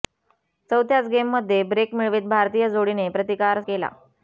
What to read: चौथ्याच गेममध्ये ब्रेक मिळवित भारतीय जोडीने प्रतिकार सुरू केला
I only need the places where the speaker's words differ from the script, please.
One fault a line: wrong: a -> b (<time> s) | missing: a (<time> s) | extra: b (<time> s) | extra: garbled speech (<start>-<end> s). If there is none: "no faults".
missing: सुरू (3.6 s)